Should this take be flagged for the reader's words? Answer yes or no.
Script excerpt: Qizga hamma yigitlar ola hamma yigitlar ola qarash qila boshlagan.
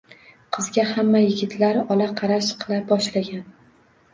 yes